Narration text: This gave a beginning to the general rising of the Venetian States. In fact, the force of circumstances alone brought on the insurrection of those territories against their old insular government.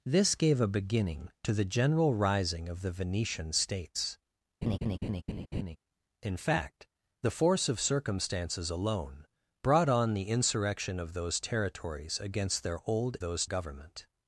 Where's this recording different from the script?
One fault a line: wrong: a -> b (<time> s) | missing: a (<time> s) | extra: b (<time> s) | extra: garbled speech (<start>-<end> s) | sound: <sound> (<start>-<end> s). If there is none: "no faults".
sound: laugh (4.6-5.8 s)
wrong: insular -> those (13.2 s)